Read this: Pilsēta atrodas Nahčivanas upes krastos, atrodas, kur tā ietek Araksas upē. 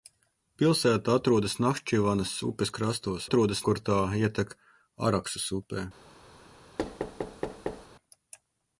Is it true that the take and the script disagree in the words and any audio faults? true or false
true